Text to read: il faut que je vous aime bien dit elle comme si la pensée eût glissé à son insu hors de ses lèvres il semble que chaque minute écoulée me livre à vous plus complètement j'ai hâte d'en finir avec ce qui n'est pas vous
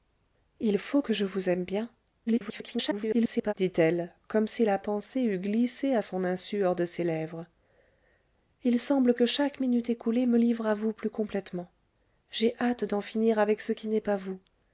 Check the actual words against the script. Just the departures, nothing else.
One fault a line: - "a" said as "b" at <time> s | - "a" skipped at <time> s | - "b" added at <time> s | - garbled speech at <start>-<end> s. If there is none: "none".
- garbled speech at 2.3-3.5 s